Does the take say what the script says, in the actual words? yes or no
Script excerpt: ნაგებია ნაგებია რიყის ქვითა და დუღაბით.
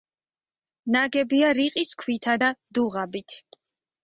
no